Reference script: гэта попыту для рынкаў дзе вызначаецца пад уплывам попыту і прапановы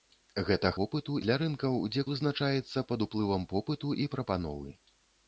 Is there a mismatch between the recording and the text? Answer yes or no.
no